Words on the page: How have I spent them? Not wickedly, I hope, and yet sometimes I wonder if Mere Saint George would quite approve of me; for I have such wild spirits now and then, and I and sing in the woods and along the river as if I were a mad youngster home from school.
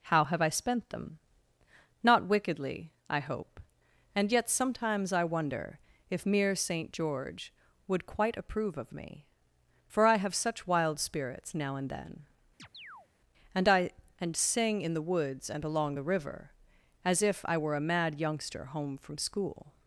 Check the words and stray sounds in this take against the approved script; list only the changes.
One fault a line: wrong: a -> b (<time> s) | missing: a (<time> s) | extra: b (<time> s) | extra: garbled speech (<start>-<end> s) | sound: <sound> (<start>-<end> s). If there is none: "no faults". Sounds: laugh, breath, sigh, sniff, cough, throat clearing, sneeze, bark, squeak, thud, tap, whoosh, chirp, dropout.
sound: chirp (12.6-13.1 s)